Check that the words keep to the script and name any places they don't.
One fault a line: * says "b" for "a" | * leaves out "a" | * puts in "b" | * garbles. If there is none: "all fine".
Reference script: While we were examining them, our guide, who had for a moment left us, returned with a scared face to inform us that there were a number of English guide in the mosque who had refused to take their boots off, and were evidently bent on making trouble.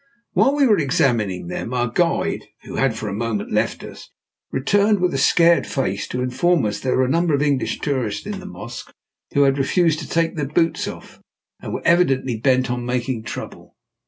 * says "tourists" for "guide"